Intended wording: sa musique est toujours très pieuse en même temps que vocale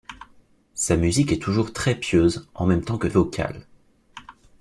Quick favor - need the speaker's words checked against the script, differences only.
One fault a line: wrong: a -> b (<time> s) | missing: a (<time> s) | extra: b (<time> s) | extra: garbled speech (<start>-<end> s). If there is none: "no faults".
no faults